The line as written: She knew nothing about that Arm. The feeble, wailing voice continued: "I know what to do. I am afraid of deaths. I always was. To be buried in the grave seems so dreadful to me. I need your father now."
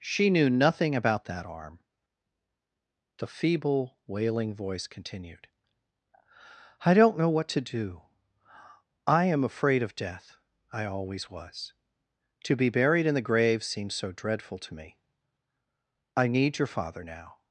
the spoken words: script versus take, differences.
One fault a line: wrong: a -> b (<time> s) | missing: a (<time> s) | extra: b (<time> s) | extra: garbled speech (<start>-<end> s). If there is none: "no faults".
extra: don't (6.9 s)
wrong: deaths -> death (10.0 s)